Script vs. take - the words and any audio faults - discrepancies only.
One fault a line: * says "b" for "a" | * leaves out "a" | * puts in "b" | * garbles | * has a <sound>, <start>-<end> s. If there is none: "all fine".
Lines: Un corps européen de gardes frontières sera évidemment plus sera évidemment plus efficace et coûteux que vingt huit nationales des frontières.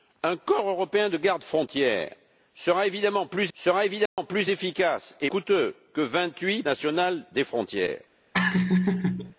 * has a dropout, 4.1-4.2 s
* has a laugh, 8.3-9.3 s